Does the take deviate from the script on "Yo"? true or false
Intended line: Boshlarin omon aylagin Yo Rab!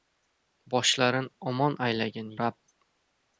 true